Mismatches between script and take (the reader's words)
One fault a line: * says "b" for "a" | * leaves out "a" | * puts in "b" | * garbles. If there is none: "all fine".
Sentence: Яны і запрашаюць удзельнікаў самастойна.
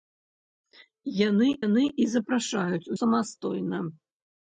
* puts in "яны"
* leaves out "удзельнікаў"